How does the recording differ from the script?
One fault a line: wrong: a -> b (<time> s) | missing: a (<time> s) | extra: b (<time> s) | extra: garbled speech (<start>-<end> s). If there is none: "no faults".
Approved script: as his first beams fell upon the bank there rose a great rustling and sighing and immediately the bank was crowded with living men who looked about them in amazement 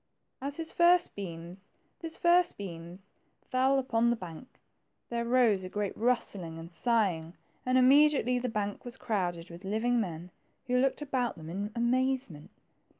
extra: his first beams (2.0 s)